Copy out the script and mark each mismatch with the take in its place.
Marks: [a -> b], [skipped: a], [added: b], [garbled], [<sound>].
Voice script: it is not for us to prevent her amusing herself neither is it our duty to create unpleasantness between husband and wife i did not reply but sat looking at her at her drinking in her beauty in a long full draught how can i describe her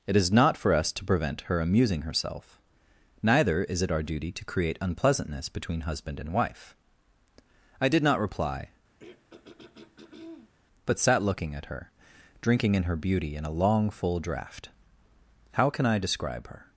it is not for us to prevent her amusing herself neither is it our duty to create unpleasantness between husband and wife i did not reply [throat clearing] but sat looking at her [skipped: at her] drinking in her beauty in a long full draught how can i describe her